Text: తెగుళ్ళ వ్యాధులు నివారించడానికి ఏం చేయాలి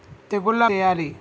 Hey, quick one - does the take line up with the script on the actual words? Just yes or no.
no